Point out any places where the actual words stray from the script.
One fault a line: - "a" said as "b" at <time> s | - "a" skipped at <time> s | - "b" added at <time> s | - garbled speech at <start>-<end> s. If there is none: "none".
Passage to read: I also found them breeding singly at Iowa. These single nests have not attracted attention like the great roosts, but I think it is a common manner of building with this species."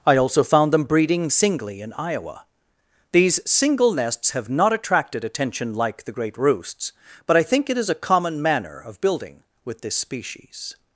- "at" said as "in" at 1.8 s